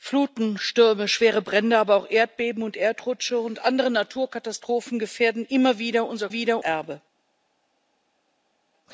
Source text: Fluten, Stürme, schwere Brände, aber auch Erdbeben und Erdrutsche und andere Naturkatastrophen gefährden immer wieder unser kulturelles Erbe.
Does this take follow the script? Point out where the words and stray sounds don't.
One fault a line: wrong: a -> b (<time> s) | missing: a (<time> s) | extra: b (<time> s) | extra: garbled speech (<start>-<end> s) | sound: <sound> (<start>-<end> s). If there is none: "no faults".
wrong: kulturelles -> wieder (6.3 s)